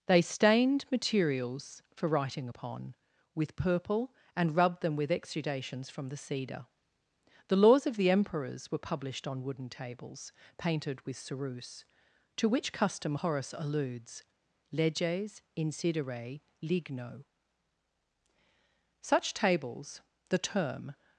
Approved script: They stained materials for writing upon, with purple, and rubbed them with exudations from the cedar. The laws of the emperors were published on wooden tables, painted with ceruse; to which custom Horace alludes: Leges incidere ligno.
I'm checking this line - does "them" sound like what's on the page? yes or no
yes